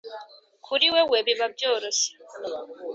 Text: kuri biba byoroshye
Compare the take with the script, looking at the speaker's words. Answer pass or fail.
fail